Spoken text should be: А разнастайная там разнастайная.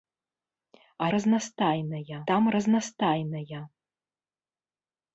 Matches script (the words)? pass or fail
pass